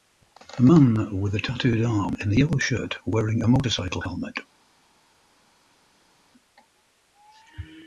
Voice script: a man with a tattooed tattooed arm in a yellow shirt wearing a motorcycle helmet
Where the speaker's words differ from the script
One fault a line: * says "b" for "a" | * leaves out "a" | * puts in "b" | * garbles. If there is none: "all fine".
* leaves out "tattooed"